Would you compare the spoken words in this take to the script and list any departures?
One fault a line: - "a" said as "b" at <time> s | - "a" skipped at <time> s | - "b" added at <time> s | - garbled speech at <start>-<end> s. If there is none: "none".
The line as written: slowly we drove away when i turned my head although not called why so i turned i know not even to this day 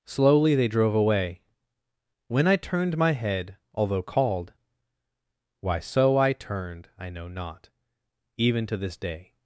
- "we" said as "they" at 0.6 s
- "not" skipped at 4.0 s